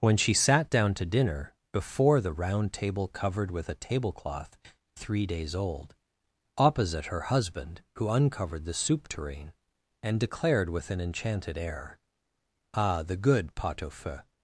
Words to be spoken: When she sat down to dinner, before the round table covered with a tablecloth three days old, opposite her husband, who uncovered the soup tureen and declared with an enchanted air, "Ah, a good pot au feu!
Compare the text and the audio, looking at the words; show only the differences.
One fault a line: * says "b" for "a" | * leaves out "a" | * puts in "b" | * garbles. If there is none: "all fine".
* says "the" for "a"